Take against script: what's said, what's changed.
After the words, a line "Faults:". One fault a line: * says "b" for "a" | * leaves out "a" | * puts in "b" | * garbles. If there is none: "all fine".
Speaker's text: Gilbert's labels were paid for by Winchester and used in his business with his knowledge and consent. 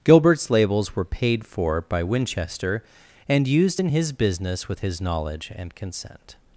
Gilbert's labels were paid for by Winchester and used in his business with his knowledge and consent.
Faults:
all fine